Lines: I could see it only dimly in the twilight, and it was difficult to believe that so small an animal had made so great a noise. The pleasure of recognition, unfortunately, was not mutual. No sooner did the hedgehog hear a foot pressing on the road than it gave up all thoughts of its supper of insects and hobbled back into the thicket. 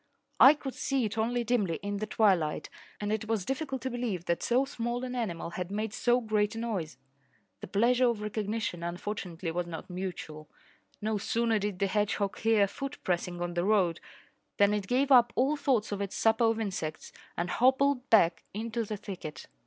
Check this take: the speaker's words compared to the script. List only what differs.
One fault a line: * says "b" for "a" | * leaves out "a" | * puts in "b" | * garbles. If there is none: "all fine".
all fine